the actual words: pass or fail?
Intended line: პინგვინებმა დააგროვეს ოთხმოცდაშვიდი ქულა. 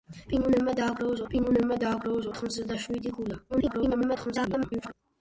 fail